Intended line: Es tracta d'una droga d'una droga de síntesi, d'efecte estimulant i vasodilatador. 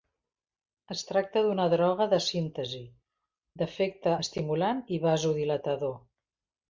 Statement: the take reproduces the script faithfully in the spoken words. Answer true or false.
false